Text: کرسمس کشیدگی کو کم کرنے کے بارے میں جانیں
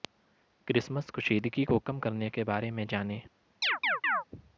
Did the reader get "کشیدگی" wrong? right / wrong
right